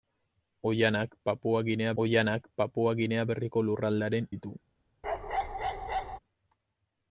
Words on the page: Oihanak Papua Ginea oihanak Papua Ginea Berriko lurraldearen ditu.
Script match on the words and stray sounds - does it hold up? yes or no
no